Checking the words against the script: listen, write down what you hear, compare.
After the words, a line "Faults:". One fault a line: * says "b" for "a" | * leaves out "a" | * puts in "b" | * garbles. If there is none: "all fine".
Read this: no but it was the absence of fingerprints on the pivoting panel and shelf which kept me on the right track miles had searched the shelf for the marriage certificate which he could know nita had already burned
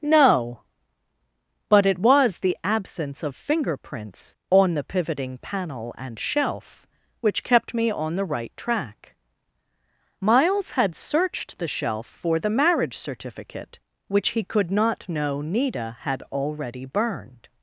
no but it was the absence of fingerprints on the pivoting panel and shelf which kept me on the right track miles had searched the shelf for the marriage certificate which he could not know nita had already burned
Faults:
* puts in "not"